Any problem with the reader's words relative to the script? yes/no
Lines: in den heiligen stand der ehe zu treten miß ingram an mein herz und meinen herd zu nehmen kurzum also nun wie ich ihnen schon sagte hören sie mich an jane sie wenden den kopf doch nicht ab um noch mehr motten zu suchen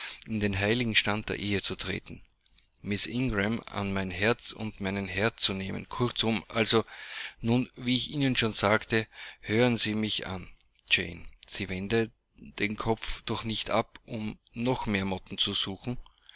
no